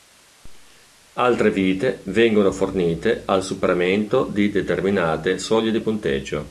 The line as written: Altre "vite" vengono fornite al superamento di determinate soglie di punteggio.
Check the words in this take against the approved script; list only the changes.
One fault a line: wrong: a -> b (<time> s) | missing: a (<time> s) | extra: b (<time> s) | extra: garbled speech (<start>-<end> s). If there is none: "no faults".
no faults